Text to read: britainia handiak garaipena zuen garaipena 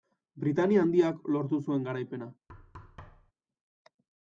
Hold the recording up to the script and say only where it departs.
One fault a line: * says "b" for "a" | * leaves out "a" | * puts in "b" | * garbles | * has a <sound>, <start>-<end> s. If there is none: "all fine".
* says "lortu" for "garaipena"
* has a thud, 2.5-3.3 s